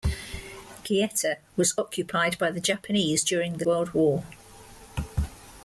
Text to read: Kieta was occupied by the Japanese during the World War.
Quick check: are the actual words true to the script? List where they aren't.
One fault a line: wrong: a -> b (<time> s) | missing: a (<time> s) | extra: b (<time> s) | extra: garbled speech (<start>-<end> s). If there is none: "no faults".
no faults